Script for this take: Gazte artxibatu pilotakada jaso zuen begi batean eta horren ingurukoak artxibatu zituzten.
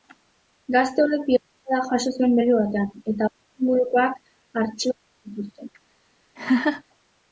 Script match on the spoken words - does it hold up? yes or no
no